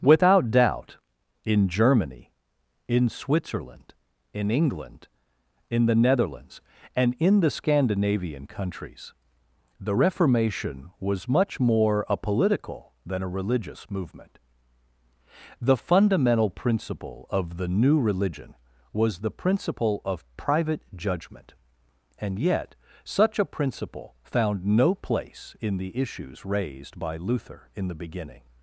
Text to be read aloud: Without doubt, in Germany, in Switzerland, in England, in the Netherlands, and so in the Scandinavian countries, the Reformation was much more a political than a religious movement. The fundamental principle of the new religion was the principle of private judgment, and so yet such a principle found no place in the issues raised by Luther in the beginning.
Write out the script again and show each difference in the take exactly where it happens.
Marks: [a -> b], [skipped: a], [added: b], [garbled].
Without doubt, in Germany, in Switzerland, in England, in the Netherlands, and [skipped: so] in the Scandinavian countries, the Reformation was much more a political than a religious movement. The fundamental principle of the new religion was the principle of private judgment, and [skipped: so] yet such a principle found no place in the issues raised by Luther in the beginning.